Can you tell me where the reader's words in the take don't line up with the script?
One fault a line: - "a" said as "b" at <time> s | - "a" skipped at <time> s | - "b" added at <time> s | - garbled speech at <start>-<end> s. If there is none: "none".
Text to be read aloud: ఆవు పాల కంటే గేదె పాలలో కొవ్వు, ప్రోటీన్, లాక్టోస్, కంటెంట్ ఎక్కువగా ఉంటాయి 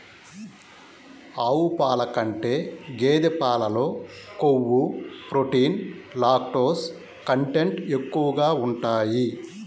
none